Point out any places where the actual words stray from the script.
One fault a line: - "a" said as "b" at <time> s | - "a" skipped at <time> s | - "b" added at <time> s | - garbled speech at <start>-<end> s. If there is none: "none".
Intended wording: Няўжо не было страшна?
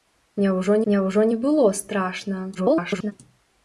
- "няўжо" added at 0.9 s
- garbled speech at 2.5-3.1 s